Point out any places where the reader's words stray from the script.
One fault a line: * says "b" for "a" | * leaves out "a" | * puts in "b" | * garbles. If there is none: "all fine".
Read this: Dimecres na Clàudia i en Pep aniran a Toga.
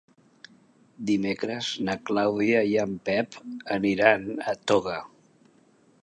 all fine